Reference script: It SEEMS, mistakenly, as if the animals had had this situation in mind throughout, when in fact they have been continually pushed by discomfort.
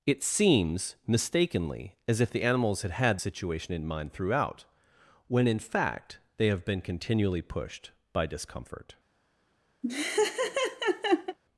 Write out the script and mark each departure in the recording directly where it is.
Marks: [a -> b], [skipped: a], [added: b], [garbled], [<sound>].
It SEEMS, mistakenly, as if the animals had had [skipped: this] situation in mind throughout, when in fact they have been continually pushed by discomfort. [laugh]